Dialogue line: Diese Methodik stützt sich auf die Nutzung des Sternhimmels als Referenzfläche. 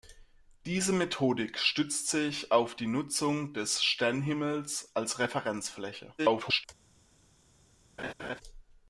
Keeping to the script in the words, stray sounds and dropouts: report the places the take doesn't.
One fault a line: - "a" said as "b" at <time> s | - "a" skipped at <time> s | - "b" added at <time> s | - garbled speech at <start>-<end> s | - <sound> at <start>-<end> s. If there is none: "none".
- garbled speech at 6.2-6.6 s
- laugh at 8.0-8.4 s